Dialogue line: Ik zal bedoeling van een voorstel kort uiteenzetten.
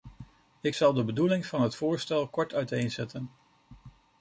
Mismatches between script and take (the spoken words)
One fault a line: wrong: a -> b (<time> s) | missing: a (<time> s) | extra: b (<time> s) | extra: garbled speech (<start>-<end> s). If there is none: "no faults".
extra: de (0.9 s)
wrong: een -> het (1.6 s)